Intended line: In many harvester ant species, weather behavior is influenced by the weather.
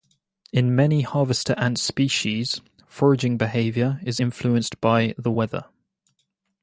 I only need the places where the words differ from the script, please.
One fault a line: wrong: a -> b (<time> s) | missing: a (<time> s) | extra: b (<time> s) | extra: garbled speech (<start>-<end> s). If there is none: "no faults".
wrong: weather -> foraging (2.9 s)